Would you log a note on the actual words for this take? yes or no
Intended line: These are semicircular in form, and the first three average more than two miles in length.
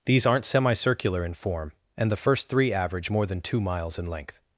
yes